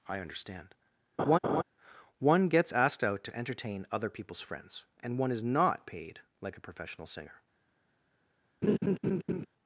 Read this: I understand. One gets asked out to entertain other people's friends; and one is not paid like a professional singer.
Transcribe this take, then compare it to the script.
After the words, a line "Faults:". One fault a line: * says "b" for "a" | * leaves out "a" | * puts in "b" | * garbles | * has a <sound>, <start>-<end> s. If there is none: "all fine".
I understand. One gets asked out to entertain other people's friends; and one is not paid like a professional singer.
Faults:
* has a laugh, 1.2-1.6 s
* has a laugh, 8.6-9.5 s